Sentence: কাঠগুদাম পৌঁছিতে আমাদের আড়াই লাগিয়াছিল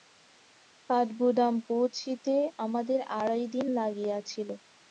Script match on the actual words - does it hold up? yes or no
no